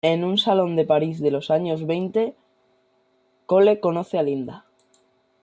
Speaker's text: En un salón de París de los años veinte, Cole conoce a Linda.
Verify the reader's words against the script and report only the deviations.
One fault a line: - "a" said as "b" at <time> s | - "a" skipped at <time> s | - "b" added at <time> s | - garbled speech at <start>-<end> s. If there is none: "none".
none